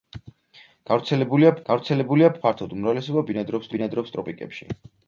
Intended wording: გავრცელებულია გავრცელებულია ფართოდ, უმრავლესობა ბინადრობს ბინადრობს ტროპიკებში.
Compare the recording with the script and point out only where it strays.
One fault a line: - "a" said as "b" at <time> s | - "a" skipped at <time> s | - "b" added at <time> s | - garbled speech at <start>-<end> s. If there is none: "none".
none